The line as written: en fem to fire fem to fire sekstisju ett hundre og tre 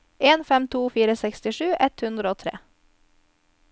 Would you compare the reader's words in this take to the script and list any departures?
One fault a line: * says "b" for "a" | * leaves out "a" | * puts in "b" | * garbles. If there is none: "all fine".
* leaves out "fem to fire"